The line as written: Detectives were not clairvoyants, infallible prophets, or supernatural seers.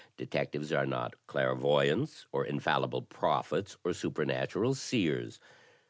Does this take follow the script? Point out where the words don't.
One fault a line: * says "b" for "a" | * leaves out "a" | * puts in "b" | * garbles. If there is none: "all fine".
* says "are" for "were"
* puts in "or"